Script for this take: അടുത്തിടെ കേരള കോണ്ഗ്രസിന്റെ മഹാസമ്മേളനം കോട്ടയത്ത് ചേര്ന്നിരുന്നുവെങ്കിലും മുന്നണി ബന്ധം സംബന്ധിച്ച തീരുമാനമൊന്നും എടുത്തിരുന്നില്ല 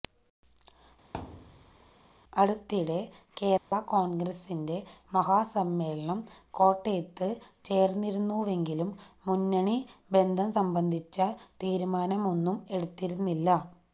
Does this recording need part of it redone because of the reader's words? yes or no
no